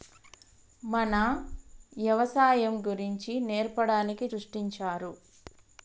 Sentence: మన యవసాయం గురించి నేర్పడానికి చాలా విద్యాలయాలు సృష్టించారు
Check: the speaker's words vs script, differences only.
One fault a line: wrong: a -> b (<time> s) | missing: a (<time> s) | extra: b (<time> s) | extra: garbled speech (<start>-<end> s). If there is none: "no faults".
missing: చాలా విద్యాలయాలు (4.3 s)